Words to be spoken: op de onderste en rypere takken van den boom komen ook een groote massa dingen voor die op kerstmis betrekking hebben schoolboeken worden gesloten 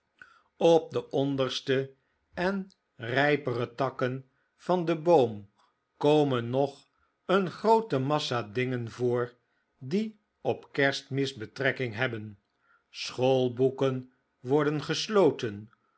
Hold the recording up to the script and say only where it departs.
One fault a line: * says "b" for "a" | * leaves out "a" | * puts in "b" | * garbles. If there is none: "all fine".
* says "nog" for "ook"